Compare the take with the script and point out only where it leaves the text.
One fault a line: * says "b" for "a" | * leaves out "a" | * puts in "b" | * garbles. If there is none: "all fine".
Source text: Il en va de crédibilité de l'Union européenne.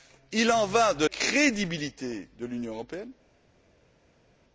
all fine